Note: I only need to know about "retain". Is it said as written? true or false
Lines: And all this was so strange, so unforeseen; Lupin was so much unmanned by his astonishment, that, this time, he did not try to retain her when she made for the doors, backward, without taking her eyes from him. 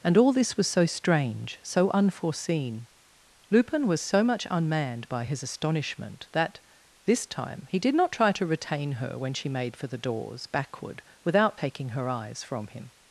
true